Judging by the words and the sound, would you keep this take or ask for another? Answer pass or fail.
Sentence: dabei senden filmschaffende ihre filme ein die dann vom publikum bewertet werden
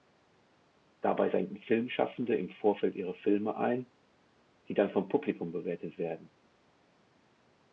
fail